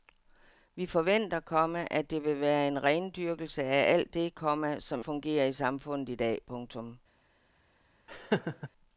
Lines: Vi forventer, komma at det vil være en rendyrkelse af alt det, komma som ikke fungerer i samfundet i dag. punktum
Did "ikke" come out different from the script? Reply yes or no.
yes